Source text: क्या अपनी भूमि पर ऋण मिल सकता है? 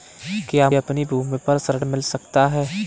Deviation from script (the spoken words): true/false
false